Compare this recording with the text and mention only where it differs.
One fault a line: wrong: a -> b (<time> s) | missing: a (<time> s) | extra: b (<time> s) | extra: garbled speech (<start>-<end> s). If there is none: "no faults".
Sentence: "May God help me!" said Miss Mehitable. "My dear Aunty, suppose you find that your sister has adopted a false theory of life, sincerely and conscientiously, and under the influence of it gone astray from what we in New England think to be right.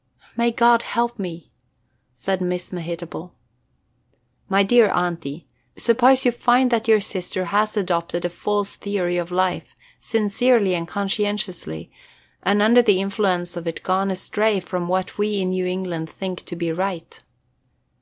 no faults